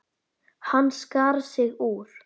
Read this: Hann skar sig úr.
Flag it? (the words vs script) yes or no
no